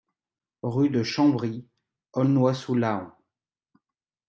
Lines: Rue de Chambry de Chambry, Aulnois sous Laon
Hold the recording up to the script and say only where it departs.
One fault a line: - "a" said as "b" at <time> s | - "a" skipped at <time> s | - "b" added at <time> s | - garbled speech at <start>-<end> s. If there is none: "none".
- "de Chambry" skipped at 1.7 s